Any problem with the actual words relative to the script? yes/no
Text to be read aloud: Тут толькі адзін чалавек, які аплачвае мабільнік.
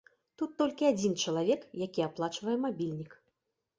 no